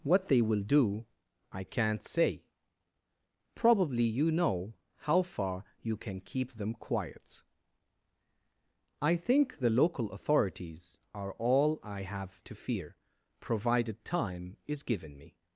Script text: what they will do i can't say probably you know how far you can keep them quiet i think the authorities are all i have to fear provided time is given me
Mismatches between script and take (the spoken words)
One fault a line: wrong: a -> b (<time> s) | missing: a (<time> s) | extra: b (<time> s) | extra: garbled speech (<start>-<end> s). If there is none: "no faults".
extra: local (9.7 s)